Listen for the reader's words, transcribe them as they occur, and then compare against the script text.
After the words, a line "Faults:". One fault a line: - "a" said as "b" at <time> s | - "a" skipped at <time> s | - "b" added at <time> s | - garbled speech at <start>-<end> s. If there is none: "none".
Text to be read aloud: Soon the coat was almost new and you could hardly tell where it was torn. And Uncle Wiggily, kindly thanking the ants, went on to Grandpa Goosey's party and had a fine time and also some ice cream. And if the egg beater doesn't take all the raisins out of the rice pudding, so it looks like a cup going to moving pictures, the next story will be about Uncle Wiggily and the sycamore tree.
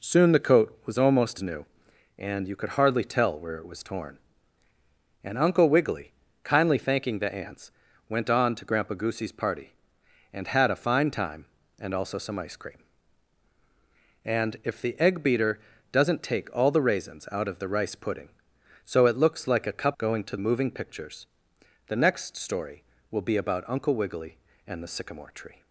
Soon the coat was almost new and you could hardly tell where it was torn. And Uncle Wiggily, kindly thanking the ants, went on to Grandpa Goosey's party and had a fine time and also some ice cream. And if the egg beater doesn't take all the raisins out of the rice pudding, so it looks like a cup going to moving pictures, the next story will be about Uncle Wiggily and the sycamore tree.
Faults:
none